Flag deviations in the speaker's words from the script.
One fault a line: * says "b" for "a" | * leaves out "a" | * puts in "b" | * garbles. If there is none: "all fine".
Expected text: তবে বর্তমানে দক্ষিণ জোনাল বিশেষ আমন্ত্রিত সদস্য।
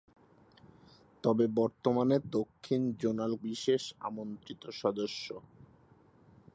all fine